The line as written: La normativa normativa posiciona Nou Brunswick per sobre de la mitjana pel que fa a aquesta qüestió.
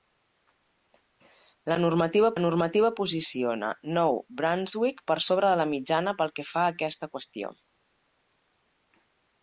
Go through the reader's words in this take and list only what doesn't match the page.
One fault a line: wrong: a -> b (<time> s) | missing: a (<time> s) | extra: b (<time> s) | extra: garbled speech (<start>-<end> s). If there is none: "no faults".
no faults